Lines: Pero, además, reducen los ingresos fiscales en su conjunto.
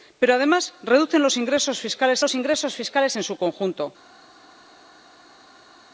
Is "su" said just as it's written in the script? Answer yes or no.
yes